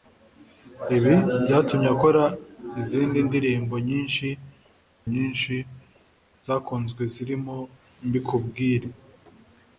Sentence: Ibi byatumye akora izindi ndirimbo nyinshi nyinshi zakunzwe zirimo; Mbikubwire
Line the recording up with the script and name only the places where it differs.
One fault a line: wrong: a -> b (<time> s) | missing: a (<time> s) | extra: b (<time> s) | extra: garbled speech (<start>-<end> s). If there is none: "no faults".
no faults